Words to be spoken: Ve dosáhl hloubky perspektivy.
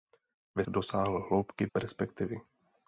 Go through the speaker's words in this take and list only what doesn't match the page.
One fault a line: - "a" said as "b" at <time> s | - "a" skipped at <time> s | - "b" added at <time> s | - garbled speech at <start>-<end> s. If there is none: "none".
none